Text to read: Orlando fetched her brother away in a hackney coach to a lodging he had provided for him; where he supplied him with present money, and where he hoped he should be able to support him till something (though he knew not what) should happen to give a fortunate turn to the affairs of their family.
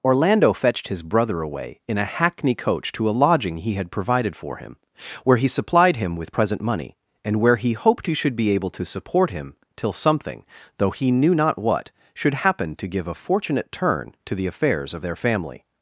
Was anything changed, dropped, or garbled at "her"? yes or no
yes